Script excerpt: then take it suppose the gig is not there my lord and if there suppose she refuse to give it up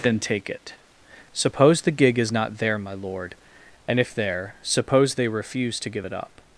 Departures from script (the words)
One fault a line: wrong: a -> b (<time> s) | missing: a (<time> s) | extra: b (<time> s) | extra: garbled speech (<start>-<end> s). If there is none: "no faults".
wrong: she -> they (5.2 s)